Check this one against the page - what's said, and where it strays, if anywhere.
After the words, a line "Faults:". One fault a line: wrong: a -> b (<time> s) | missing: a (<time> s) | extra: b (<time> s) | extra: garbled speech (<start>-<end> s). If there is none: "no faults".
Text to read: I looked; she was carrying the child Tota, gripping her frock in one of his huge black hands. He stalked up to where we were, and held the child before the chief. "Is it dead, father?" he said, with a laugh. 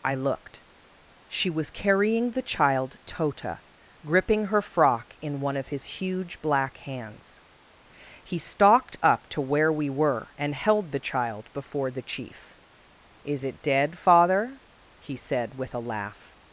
I looked; she was carrying the child Tota, gripping her frock in one of his huge black hands. He stalked up to where we were, and held the child before the chief. "Is it dead, father?" he said, with a laugh.
Faults:
no faults